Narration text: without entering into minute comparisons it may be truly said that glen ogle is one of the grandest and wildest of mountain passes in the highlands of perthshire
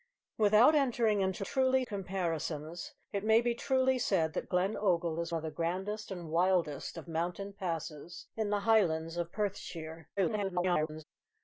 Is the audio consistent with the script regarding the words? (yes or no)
no